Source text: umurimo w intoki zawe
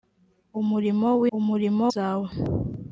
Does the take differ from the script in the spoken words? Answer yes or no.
yes